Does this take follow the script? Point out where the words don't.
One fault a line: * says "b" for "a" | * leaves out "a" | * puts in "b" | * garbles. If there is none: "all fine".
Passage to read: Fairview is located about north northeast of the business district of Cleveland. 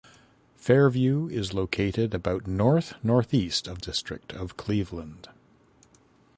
* leaves out "the business"